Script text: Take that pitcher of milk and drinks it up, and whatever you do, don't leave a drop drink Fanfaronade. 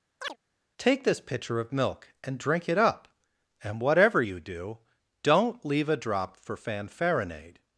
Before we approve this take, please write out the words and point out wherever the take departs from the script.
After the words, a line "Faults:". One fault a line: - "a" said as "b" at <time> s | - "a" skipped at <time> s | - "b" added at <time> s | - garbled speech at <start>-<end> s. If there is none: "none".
Take this pitcher of milk and drink it up, and whatever you do, don't leave a drop for Fanfaronade.
Faults:
- "that" said as "this" at 1.0 s
- "drinks" said as "drink" at 2.4 s
- "drink" said as "for" at 6.4 s